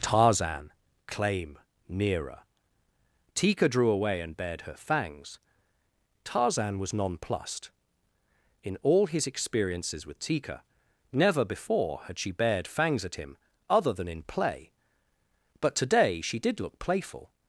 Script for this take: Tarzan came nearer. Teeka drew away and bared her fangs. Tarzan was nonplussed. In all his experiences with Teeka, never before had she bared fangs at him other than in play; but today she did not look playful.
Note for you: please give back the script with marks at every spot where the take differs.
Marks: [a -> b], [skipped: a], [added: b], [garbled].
Tarzan [came -> claim] nearer. Teeka drew away and bared her fangs. Tarzan was nonplussed. In all his experiences with Teeka, never before had she bared fangs at him other than in play; but today she did [skipped: not] look playful.